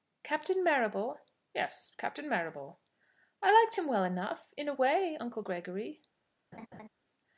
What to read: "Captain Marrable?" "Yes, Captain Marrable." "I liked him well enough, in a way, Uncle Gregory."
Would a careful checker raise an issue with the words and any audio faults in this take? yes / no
yes